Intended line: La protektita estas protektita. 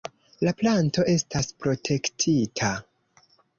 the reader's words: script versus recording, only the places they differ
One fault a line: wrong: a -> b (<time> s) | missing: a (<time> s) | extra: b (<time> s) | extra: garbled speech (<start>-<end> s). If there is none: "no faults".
wrong: protektita -> planto (0.6 s)